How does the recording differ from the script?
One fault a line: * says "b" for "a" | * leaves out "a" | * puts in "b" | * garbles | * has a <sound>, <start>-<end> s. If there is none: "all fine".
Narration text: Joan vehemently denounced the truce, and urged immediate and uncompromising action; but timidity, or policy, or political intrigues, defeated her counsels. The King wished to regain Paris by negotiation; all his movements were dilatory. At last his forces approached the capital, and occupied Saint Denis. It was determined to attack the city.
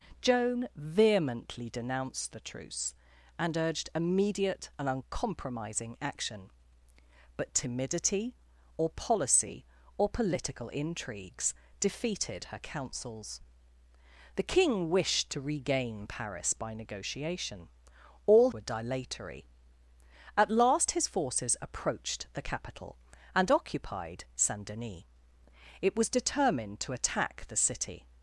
* leaves out "his movements"